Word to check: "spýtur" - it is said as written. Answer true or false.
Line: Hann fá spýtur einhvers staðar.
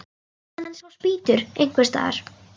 true